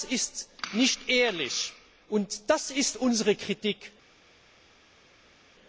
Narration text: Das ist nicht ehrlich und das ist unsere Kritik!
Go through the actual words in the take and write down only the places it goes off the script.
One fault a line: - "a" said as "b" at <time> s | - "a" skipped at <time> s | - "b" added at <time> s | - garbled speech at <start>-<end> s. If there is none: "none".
none